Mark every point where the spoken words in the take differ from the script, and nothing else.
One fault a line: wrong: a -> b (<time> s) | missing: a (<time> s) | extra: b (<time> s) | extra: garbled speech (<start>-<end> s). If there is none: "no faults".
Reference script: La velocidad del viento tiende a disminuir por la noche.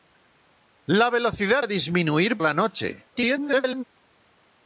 missing: del viento tiende (1.6 s)
missing: por (2.4 s)
extra: garbled speech (3.1-3.8 s)